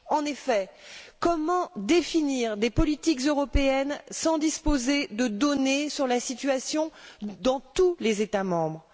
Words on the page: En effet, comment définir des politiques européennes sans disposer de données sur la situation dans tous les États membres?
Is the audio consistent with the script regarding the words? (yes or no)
yes